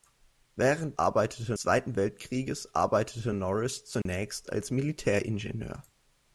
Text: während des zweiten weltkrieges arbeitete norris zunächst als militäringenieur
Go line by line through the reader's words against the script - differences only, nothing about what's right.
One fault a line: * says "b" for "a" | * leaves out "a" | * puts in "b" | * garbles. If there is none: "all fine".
* says "arbeitete" for "des"